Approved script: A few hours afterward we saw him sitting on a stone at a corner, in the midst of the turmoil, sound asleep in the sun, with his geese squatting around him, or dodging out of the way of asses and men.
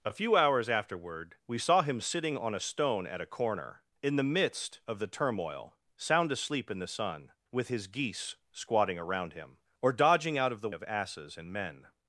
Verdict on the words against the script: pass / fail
fail